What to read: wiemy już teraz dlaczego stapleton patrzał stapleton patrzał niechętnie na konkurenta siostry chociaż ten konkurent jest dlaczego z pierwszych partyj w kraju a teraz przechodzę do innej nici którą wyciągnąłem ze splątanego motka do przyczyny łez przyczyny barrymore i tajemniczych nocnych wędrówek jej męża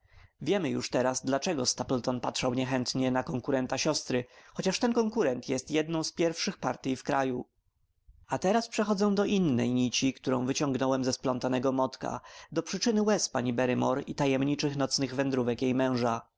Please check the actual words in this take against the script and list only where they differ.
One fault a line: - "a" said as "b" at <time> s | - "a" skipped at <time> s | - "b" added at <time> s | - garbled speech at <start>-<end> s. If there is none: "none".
- "stapleton patrzał" skipped at 2.5 s
- "dlaczego" said as "jedną" at 5.7 s
- "przyczyny" said as "pani" at 13.3 s